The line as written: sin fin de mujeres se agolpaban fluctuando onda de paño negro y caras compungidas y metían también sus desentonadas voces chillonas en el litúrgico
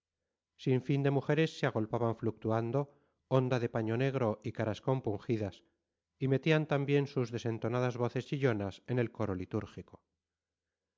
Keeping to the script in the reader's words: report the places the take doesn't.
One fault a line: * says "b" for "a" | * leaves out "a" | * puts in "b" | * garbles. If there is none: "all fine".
* puts in "coro"